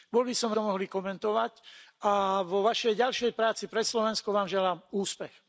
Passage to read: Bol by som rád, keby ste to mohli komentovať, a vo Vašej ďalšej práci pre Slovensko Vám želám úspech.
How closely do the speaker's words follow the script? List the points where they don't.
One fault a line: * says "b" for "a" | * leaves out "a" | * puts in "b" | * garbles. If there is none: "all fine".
* leaves out "rád keby ste"